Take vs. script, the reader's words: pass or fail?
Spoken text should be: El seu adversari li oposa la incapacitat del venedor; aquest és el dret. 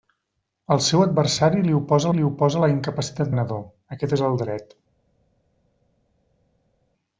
fail